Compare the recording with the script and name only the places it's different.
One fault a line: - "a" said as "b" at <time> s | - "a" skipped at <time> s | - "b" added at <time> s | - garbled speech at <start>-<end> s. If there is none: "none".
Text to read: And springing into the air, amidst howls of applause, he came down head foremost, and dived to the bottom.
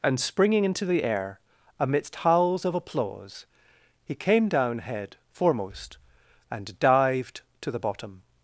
none